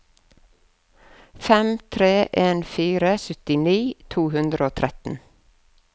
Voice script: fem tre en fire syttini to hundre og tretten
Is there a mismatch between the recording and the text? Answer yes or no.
no